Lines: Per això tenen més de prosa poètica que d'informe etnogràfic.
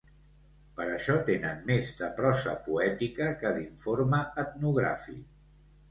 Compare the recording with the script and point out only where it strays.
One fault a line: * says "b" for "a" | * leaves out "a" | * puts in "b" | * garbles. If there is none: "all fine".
all fine